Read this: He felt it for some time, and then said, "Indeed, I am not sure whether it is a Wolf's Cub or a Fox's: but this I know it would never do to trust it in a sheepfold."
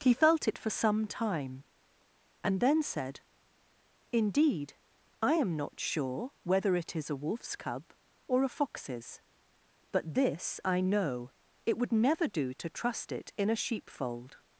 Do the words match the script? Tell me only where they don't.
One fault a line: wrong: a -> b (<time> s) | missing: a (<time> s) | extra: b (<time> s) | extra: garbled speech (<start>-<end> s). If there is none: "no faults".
no faults